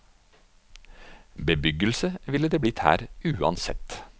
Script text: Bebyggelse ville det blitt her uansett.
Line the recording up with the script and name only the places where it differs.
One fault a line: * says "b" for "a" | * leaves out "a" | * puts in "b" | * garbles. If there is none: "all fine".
all fine